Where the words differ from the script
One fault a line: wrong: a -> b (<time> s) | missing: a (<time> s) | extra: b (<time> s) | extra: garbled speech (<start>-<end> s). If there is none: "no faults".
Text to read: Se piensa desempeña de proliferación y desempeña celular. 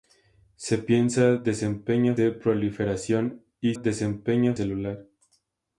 no faults